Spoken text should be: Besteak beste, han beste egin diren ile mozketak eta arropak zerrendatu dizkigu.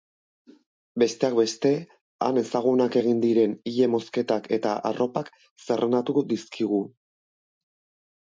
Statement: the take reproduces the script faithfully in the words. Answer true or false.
false